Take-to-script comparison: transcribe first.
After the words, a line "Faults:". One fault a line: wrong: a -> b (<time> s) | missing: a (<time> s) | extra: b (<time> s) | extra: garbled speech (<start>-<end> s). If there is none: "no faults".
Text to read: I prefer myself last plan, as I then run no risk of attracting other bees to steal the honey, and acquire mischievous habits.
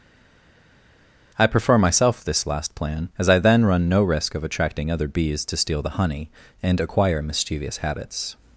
I prefer myself this last plan, as I then run no risk of attracting other bees to steal the honey, and acquire mischievous habits.
Faults:
extra: this (2.2 s)